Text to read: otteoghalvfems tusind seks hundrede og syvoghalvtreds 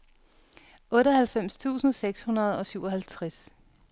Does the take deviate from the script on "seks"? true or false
false